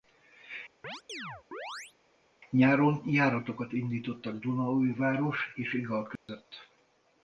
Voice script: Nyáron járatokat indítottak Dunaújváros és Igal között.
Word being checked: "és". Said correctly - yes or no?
yes